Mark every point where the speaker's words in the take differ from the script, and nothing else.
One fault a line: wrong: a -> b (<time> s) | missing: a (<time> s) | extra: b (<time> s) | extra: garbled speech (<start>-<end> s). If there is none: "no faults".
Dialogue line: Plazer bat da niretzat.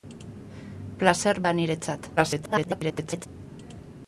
missing: bat (1.4 s)
extra: garbled speech (2.2-3.3 s)